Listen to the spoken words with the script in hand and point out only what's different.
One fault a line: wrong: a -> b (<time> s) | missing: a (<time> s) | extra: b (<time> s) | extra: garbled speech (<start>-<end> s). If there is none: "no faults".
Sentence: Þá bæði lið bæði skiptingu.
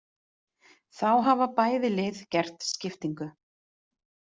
extra: hafa (1.3 s)
wrong: bæði -> gert (2.4 s)